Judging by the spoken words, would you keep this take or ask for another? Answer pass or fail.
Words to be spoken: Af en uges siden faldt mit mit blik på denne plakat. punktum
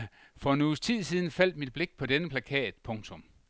fail